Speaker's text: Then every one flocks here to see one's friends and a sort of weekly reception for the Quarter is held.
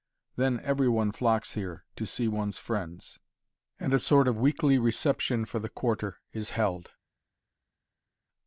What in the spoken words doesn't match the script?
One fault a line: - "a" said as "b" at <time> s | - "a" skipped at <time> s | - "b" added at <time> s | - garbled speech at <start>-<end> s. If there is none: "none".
none